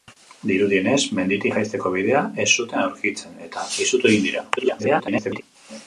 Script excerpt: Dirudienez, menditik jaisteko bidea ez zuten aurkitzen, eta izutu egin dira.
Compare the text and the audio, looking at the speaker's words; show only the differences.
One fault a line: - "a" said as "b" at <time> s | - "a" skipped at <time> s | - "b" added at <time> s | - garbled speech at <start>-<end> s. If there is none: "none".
- garbled speech at 4.6-5.4 s